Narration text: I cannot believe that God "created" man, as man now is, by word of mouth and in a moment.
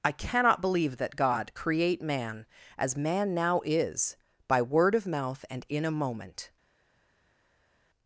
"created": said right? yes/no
no